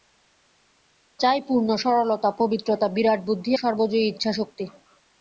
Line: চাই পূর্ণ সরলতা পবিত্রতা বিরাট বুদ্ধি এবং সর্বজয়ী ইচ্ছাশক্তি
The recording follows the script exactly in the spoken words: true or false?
false